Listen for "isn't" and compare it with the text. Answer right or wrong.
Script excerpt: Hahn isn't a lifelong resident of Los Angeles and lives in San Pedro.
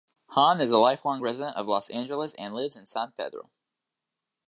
wrong